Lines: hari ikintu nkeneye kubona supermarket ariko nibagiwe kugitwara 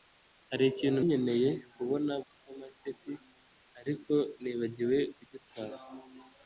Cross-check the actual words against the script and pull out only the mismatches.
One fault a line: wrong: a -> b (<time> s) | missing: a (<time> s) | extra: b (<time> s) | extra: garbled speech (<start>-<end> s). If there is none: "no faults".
no faults